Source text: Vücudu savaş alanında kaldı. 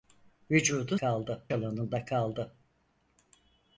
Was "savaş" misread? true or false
true